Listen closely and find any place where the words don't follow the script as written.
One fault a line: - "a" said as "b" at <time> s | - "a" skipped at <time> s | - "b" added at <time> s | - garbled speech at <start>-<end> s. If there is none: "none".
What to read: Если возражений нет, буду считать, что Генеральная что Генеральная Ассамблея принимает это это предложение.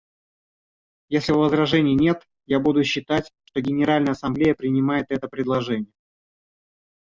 - "я" added at 2.5 s
- "что Генеральная" skipped at 4.1 s
- "это" skipped at 5.3 s